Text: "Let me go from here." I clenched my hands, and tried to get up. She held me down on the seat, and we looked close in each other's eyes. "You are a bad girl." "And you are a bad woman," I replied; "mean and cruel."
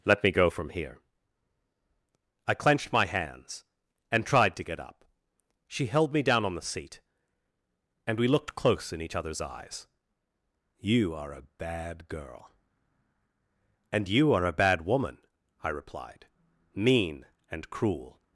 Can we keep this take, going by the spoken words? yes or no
yes